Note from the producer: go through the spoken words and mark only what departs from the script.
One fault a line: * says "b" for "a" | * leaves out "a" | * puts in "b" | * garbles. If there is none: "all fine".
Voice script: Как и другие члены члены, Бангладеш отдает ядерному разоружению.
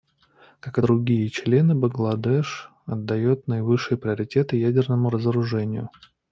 * leaves out "члены"
* puts in "наивысший приоритет"